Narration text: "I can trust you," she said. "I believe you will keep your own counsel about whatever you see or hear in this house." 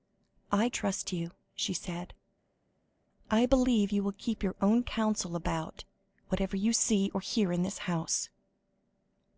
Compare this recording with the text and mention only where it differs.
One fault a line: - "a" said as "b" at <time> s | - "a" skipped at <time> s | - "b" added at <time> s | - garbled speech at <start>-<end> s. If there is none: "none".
- "can" skipped at 0.7 s